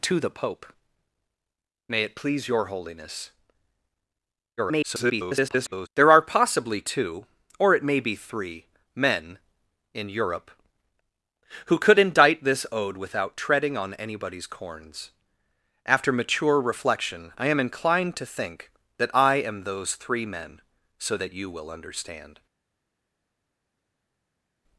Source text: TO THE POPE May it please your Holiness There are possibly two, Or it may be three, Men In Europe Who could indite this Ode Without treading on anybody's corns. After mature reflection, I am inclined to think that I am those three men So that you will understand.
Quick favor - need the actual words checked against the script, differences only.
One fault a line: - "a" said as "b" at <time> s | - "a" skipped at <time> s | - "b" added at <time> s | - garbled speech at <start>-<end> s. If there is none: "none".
- garbled speech at 4.6-5.9 s